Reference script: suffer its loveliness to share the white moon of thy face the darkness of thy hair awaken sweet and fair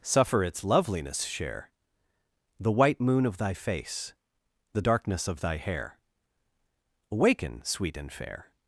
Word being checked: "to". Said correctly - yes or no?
no